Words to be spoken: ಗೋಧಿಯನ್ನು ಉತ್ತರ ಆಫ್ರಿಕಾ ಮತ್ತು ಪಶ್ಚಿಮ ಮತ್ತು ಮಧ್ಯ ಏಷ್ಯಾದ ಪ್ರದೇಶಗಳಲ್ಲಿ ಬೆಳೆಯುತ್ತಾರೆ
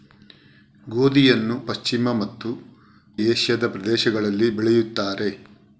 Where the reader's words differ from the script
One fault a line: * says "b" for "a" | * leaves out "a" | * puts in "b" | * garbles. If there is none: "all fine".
* leaves out "ಉತ್ತರ ಆಫ್ರಿಕಾ ಮತ್ತು"
* leaves out "ಮಧ್ಯ"